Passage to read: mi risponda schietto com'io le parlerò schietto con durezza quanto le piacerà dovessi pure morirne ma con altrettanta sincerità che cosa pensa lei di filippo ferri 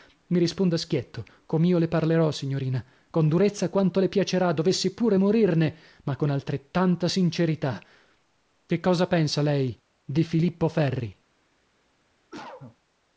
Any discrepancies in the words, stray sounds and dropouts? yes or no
yes